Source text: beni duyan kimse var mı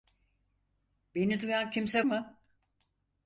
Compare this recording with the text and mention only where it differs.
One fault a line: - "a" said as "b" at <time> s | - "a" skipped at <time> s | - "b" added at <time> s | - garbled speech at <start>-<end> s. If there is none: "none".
- "var" skipped at 2.0 s